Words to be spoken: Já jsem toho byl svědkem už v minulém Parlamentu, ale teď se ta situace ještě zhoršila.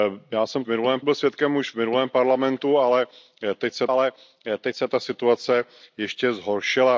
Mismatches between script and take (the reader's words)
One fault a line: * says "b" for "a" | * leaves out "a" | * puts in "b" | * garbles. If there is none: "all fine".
* says "minulém" for "toho"
* puts in "ale teď se"